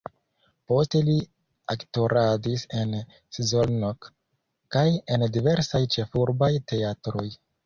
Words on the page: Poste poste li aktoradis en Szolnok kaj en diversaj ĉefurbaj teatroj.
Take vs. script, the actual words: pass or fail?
fail